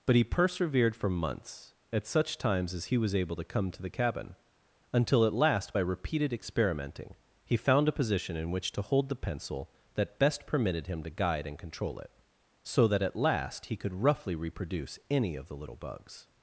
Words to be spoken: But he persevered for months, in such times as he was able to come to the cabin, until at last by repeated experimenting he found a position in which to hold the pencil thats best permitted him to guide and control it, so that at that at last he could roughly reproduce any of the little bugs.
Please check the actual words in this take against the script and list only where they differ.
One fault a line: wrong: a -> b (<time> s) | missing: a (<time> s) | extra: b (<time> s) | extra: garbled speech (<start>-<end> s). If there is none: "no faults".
wrong: in -> at (1.9 s)
wrong: thats -> that (9.9 s)
missing: that at (13.2 s)